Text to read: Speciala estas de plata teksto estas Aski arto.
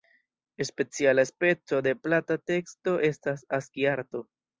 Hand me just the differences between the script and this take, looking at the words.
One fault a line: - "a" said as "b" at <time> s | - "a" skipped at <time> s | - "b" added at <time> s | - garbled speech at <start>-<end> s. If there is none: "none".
- "estas" said as "speco" at 1.3 s